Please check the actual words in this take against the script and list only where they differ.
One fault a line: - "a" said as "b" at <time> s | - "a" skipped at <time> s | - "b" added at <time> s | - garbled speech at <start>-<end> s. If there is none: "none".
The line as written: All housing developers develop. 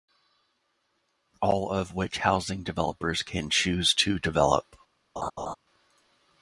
- "of which" added at 1.7 s
- "can choose to" added at 3.2 s